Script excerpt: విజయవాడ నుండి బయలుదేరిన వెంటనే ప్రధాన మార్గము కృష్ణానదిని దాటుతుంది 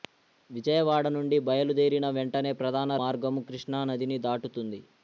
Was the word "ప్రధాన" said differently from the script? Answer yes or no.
no